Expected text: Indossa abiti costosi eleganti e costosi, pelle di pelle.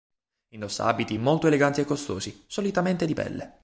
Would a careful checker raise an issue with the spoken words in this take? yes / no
yes